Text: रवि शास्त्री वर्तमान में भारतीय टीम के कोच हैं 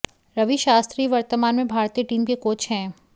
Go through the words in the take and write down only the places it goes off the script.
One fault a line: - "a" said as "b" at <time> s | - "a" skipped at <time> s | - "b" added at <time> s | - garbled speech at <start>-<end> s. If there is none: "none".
none